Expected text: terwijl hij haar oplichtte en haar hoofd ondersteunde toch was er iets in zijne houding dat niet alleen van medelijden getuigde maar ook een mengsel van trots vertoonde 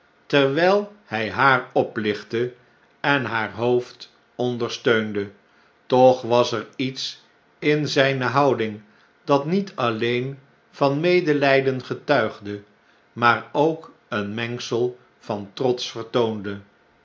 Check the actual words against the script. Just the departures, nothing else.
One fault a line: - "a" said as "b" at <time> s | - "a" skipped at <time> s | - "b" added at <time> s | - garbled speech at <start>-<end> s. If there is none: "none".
none